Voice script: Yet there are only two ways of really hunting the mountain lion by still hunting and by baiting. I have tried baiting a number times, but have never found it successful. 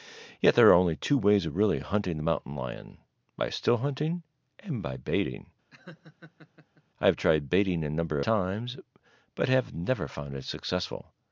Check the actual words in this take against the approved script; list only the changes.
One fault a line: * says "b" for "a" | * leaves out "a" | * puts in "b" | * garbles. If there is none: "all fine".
all fine